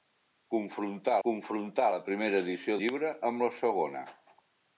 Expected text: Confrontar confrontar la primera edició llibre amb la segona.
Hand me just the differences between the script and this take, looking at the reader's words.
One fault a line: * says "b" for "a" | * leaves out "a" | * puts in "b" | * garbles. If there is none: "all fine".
all fine